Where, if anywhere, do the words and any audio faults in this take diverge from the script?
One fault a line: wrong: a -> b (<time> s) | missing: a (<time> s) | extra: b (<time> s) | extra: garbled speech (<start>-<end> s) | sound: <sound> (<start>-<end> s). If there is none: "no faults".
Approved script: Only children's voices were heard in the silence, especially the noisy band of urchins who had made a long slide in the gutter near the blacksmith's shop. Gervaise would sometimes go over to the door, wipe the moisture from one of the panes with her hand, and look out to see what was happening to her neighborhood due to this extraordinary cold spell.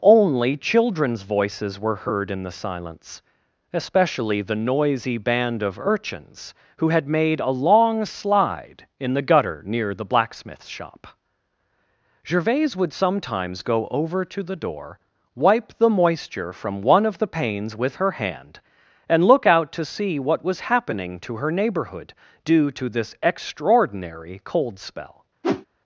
sound: whoosh (25.4-25.7 s)